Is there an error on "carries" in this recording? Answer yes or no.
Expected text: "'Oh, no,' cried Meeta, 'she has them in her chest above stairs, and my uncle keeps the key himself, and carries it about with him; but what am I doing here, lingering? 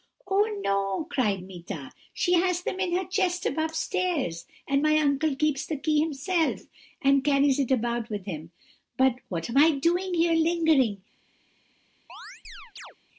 no